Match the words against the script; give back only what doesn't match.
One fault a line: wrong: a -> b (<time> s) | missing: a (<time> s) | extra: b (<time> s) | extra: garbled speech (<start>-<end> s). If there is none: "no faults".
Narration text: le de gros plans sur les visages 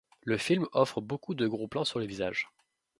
extra: film offre beaucoup (0.3 s)